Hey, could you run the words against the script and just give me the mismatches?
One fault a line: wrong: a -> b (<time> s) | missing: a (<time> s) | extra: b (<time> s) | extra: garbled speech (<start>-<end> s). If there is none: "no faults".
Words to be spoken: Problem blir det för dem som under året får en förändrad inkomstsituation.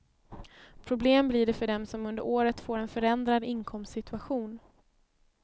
no faults